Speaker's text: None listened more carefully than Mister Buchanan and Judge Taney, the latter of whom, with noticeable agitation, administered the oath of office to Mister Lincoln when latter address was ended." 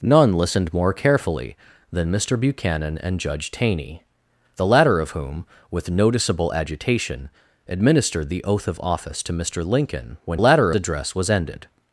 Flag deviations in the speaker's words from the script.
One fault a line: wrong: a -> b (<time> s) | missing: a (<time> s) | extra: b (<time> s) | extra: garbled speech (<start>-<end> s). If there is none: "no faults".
no faults